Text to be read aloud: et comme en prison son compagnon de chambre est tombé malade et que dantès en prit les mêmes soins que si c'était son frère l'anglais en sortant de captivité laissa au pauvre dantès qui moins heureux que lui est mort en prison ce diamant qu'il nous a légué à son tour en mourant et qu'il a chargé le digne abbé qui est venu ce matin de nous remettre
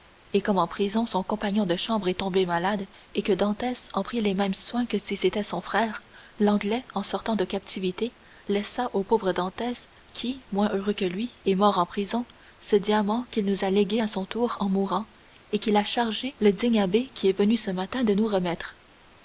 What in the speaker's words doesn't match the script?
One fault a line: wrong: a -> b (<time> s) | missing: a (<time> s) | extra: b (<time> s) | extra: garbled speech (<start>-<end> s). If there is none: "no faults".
no faults